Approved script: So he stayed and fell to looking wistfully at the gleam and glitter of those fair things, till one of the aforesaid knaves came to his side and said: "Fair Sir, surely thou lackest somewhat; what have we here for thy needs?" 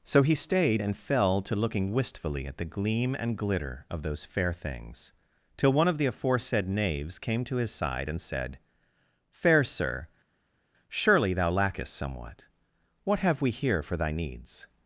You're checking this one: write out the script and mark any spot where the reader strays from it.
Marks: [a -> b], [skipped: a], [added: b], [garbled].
So he stayed and fell to looking wistfully at the gleam and glitter of those fair things, till one of the aforesaid knaves came to his side and said: "Fair Sir, surely thou lackest somewhat; what have we here for thy needs?"